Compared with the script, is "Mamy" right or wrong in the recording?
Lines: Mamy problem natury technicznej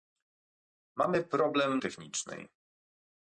right